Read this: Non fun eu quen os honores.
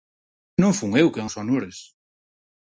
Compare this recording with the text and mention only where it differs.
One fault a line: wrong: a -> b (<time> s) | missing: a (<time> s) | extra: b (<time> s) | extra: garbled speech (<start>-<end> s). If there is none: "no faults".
no faults